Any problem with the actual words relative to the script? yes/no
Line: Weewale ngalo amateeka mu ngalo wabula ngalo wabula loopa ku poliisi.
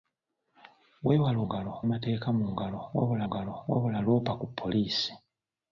no